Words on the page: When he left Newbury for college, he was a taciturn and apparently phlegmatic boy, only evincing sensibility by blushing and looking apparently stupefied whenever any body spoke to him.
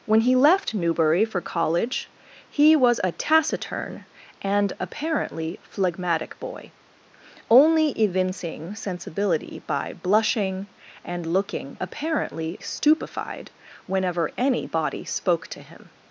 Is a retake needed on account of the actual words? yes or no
no